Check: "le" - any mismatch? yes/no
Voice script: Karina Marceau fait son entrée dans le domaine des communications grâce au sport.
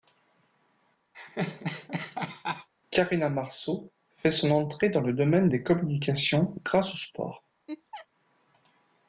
no